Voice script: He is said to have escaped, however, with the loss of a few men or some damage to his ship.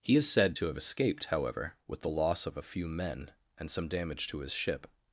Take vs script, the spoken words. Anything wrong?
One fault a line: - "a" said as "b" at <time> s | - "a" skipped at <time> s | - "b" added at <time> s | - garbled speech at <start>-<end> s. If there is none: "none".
- "or" said as "and" at 3.6 s